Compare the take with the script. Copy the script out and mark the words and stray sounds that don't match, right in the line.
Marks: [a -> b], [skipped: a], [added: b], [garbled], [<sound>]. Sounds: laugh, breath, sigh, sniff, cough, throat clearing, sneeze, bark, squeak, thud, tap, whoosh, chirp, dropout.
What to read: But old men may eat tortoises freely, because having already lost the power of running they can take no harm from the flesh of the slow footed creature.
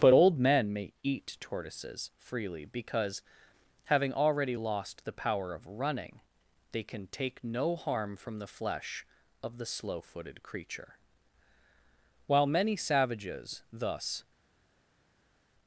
But old men may eat tortoises freely, because having already lost the power of running they can take no harm from the flesh of the slow footed creature. [added: While many savages thus]